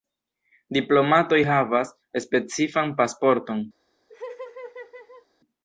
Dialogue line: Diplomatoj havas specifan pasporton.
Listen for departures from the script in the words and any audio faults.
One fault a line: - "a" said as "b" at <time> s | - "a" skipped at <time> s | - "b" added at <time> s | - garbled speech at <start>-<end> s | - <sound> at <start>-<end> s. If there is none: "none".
- laugh at 4.1-5.3 s